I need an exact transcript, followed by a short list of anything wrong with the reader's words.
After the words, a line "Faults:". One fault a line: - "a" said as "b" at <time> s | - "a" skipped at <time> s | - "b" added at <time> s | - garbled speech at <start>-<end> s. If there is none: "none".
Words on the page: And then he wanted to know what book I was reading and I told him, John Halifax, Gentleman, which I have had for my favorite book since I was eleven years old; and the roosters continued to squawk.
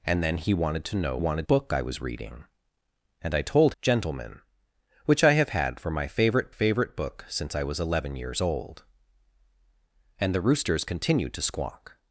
And then he wanted to know wanted book I was reading and I told Gentleman, which I have had for my favorite favorite book since I was eleven years old; and the roosters continued to squawk.
Faults:
- "what" said as "wanted" at 1.2 s
- "him John Halifax" skipped at 3.7 s
- "favorite" added at 6.5 s